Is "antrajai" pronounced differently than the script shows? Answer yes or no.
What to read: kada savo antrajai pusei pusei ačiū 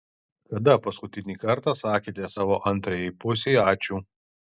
no